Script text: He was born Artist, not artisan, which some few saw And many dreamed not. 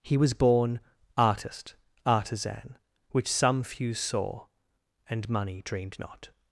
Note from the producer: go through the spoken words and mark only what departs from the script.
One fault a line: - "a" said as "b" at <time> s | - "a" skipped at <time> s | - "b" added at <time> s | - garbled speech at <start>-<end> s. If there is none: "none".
- "not" skipped at 1.8 s
- "many" said as "money" at 5.3 s